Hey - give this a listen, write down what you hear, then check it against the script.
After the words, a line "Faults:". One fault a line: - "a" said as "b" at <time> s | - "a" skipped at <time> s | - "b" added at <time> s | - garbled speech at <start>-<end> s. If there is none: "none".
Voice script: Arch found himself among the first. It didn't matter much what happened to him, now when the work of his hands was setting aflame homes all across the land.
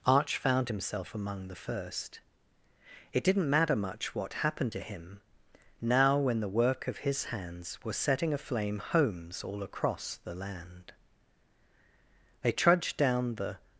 Arch found himself among the first. It didn't matter much what happened to him, now when the work of his hands was setting aflame homes all across the land. They trudged down the
Faults:
- "They trudged down the" added at 12.4 s